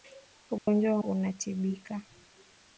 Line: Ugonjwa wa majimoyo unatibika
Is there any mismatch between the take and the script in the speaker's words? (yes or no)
yes